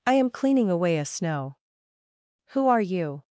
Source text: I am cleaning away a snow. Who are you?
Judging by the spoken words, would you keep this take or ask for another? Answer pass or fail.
pass